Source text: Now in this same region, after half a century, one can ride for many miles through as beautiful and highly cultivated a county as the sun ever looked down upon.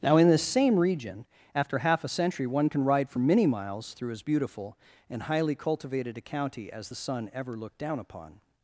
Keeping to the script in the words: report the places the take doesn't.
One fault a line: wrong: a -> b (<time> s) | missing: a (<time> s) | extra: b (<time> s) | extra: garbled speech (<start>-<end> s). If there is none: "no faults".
no faults